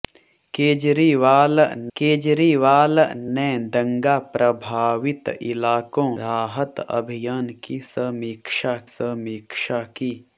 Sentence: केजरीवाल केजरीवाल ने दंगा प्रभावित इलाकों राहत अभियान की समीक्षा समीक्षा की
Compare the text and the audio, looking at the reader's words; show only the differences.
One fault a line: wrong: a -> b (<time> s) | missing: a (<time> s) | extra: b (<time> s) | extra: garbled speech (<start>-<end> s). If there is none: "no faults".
no faults